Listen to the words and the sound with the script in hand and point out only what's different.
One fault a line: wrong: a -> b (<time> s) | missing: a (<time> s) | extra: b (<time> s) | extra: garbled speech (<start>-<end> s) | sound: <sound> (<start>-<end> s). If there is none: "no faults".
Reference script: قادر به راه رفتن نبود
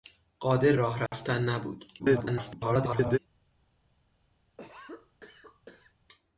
missing: به (0.8 s)
sound: dropout (1.1-1.1 s)
extra: garbled speech (2.0-3.2 s)
sound: cough (4.6-5.9 s)